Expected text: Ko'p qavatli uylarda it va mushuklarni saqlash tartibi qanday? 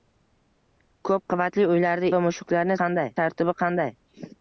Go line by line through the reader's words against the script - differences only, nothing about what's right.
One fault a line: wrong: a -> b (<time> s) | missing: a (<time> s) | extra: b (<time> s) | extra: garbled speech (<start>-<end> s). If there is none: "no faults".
missing: it (2.1 s)
wrong: saqlash -> qanday (2.8 s)